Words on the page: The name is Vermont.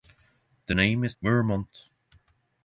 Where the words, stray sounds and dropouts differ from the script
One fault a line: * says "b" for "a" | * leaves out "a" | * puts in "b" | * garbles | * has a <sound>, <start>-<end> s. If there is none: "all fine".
all fine